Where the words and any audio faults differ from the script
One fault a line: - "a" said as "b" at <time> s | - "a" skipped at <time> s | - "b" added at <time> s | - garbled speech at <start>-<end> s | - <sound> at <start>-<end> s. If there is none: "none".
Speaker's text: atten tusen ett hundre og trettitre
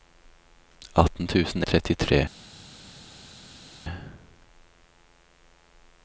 - "ett hundre" skipped at 1.6 s